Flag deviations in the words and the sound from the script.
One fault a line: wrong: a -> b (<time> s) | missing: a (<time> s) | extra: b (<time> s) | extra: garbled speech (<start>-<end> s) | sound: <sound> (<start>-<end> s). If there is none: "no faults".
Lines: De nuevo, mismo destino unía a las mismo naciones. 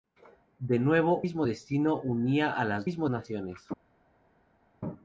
no faults